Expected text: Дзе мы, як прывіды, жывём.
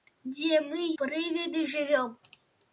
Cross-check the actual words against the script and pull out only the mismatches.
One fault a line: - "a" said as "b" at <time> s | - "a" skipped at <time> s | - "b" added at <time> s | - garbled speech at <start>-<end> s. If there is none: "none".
- "як" skipped at 0.8 s